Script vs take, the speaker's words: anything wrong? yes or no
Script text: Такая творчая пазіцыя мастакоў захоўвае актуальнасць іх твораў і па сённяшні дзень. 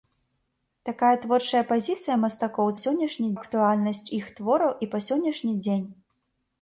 yes